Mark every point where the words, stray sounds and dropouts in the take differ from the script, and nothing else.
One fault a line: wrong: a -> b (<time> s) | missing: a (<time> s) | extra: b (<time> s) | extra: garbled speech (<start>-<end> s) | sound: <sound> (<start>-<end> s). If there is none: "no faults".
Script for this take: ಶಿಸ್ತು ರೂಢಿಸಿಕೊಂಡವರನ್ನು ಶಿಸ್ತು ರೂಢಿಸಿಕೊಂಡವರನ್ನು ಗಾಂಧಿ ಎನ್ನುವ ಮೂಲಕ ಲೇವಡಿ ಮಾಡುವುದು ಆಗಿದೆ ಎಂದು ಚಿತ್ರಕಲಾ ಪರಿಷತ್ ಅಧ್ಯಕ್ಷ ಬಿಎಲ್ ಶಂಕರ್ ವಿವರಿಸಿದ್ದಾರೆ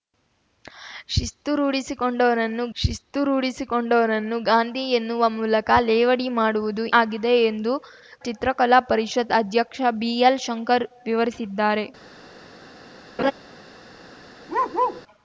sound: laugh (13.2-13.3 s)
sound: bark (14.5-15.0 s)